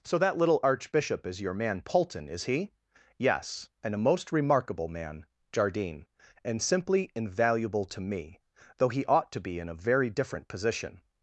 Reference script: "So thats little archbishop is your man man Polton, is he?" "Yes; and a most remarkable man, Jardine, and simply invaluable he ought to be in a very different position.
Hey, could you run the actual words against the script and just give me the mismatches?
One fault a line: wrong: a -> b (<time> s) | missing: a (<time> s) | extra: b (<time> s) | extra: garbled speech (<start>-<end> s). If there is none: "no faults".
wrong: thats -> that (0.2 s)
missing: man (1.8 s)
extra: to me though (7.9 s)